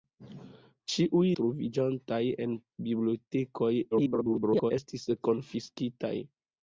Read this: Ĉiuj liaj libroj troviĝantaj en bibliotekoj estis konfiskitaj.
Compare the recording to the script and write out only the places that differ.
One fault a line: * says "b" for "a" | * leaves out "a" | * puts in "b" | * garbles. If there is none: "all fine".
* leaves out "liaj libroj"
* garbles